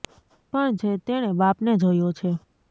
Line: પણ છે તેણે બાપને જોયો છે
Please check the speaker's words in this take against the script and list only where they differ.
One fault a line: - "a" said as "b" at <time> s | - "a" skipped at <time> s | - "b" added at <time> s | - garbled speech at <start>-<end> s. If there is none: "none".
none